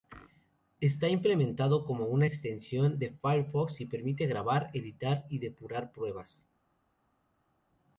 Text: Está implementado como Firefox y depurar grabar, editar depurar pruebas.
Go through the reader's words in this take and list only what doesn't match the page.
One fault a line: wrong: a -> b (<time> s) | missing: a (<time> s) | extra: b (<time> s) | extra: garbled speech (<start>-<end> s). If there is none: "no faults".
extra: una extensión de (2.1 s)
wrong: depurar -> permite (3.9 s)
extra: y (5.3 s)